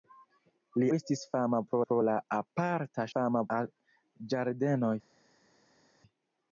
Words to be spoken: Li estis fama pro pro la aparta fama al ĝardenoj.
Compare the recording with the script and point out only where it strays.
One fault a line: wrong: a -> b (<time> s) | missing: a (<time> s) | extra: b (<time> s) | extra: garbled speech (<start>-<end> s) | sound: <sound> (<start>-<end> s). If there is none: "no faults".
no faults